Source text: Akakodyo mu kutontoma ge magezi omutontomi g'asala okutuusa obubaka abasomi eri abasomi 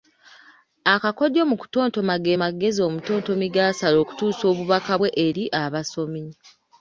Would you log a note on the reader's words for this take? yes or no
yes